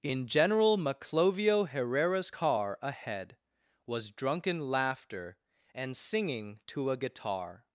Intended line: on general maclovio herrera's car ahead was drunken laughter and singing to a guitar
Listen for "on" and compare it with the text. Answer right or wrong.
wrong